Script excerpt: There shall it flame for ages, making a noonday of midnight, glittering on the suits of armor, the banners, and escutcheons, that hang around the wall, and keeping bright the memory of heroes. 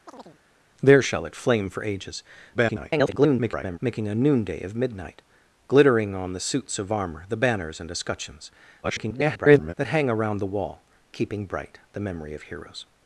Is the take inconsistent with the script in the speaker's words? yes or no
yes